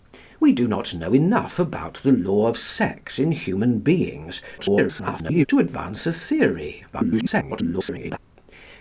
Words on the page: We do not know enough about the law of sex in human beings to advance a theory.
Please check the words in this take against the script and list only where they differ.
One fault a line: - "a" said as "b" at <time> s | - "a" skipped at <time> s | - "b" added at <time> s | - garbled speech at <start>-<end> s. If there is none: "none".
- garbled speech at 4.6-5.5 s
- garbled speech at 6.9-8.2 s